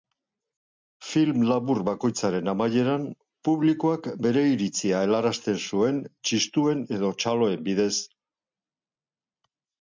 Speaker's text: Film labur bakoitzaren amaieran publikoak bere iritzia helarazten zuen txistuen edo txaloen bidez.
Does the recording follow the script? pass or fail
pass